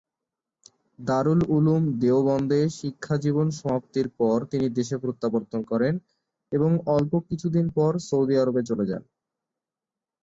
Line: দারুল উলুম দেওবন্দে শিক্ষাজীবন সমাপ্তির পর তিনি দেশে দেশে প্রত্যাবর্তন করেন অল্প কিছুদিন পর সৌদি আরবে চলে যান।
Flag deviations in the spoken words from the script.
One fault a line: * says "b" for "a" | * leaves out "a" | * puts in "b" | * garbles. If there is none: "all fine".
* leaves out "দেশে"
* puts in "এবং"